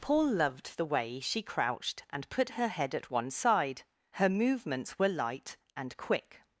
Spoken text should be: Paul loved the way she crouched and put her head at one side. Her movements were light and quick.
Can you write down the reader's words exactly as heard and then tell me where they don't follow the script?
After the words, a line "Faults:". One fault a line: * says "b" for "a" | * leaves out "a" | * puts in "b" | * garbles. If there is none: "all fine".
Paul loved the way she crouched and put her head at one side. Her movements were light and quick.
Faults:
all fine